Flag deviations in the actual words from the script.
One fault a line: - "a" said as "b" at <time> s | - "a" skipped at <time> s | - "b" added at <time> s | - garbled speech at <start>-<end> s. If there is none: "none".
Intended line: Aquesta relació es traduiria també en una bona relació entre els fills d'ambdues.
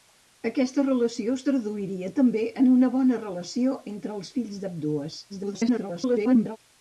- garbled speech at 5.3-6.6 s